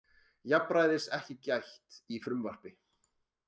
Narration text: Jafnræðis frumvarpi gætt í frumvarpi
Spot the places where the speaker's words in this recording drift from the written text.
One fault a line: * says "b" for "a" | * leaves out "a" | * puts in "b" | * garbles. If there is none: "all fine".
* says "ekki" for "frumvarpi"